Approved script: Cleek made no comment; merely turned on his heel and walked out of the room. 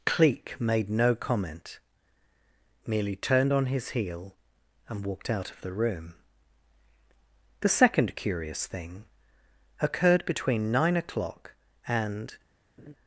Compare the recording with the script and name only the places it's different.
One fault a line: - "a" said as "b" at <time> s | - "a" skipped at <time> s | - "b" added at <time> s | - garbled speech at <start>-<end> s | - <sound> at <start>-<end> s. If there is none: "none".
- "The second curious thing occurred between nine o'clock and" added at 7.6 s
- laugh at 12.8-12.9 s